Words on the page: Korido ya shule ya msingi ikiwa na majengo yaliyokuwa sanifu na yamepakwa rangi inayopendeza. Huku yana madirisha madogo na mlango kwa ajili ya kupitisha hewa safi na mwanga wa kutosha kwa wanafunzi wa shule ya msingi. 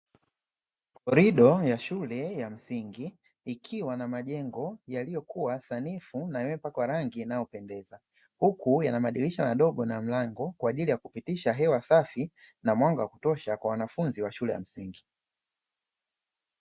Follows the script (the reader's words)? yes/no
yes